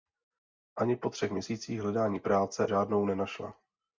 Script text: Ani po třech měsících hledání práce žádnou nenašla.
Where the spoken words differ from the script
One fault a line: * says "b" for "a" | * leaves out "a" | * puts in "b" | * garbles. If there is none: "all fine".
all fine